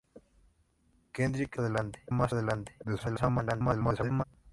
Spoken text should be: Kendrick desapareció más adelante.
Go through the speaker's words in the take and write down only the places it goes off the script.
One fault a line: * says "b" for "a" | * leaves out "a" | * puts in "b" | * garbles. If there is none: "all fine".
* says "adelante" for "desapareció"
* garbles